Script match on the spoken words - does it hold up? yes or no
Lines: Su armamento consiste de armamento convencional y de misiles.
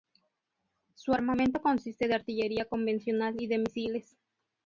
no